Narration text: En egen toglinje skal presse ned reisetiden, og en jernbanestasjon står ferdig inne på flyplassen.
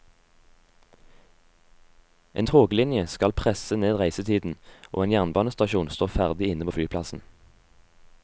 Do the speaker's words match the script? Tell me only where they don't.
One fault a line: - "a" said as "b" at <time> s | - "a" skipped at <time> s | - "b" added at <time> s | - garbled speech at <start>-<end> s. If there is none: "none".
- "egen" skipped at 2.5 s